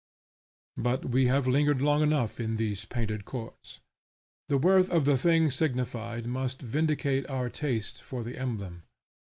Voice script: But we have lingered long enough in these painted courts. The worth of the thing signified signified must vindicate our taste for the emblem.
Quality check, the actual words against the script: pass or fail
fail